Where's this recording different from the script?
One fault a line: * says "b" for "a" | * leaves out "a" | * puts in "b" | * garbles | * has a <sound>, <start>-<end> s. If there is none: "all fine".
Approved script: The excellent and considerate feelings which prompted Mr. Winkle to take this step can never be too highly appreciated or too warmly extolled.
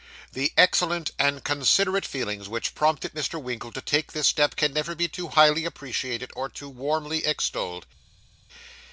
all fine